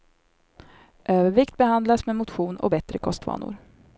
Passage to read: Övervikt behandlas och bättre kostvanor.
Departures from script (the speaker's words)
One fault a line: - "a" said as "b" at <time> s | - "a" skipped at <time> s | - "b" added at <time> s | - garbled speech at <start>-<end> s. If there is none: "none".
- "med motion" added at 2.0 s